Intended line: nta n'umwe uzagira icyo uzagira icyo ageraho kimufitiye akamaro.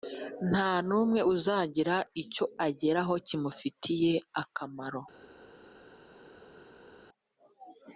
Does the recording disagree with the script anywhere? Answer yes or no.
yes